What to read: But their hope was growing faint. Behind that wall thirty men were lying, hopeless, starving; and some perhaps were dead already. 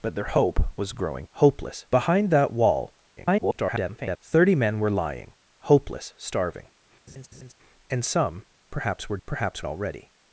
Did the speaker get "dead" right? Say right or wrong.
wrong